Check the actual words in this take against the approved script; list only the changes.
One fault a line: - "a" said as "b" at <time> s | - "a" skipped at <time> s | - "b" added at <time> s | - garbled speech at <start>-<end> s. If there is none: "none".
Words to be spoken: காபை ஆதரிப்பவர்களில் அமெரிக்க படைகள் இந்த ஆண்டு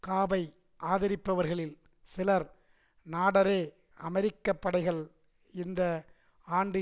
- "சிலர் நாடெரே" added at 2.1 s